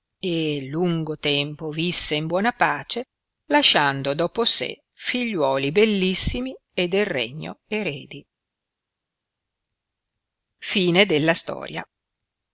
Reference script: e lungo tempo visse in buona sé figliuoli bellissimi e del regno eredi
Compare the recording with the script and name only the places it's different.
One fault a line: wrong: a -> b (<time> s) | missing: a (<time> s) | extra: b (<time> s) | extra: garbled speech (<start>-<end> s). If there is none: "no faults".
extra: pace lasciando dopo (2.5 s)